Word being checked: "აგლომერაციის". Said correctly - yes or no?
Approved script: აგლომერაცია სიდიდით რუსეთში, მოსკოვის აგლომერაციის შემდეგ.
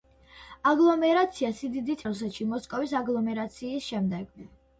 yes